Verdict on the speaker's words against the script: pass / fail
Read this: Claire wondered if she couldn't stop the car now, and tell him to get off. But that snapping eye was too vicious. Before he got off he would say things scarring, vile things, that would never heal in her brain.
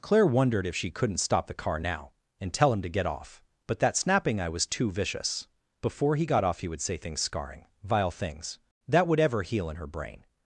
fail